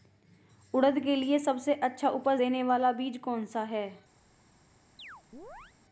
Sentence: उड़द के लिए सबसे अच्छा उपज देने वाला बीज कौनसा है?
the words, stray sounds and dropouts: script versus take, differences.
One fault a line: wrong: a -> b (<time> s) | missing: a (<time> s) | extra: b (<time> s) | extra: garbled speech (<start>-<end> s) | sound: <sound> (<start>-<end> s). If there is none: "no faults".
sound: chirp (5.0-5.8 s)